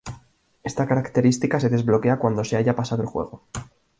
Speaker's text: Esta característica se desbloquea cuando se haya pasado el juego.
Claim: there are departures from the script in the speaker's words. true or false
false